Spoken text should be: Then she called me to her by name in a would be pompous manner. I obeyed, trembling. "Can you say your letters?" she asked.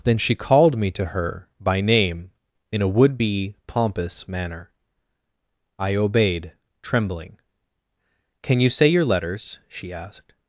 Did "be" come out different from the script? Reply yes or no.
no